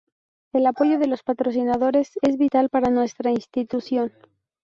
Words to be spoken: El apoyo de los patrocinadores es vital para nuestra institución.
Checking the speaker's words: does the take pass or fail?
pass